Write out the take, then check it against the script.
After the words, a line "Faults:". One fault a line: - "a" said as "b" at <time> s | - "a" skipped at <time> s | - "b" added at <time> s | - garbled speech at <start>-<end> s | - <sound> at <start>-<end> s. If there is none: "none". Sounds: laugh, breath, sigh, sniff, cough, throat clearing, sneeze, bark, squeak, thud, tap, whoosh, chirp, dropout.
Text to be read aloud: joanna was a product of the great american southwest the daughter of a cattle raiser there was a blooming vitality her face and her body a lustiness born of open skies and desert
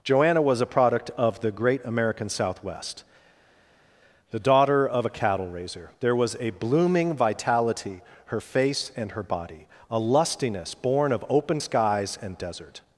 joanna was a product of the great american southwest the daughter of a cattle raiser there was a blooming vitality her face and her body a lustiness born of open skies and desert
Faults:
none